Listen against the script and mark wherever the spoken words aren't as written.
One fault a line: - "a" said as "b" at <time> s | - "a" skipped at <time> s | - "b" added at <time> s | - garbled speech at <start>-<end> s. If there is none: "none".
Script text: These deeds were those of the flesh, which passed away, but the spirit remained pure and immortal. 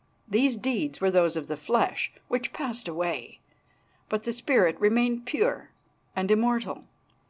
none